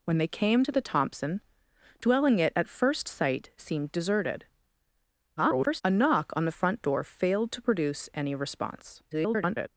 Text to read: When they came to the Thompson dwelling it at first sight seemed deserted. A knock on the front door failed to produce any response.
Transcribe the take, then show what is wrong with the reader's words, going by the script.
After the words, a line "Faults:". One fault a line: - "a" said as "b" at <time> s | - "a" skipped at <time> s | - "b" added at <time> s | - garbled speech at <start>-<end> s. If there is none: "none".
When they came to the Thompson dwelling it at first sight seemed deserted. [garbled] A knock on the front door failed to produce any response. [garbled]
Faults:
- garbled speech at 5.4-5.8 s
- garbled speech at 9.1-9.7 s